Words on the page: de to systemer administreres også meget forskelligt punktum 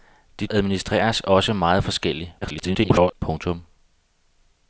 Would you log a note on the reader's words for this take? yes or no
yes